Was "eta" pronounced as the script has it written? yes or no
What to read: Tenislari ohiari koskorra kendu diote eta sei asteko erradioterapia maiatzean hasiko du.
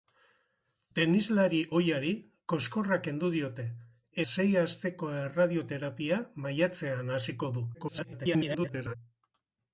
no